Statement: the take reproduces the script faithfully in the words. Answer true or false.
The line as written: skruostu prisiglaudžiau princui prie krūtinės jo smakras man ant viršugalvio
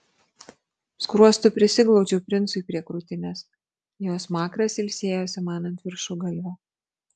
false